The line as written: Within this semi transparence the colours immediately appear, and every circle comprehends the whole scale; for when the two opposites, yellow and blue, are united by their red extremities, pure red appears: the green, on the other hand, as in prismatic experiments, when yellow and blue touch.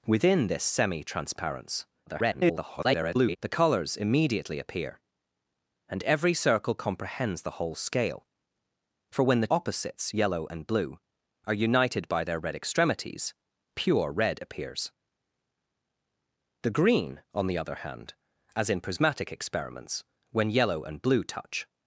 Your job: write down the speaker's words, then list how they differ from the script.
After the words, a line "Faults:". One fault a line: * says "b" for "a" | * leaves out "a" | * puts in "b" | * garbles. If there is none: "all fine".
Within this semi transparence [garbled] the colours immediately appear, and every circle comprehends the whole scale; for when the opposites, yellow and blue, are united by their red extremities, pure red appears: the green, on the other hand, as in prismatic experiments, when yellow and blue touch.
Faults:
* garbles
* leaves out "two"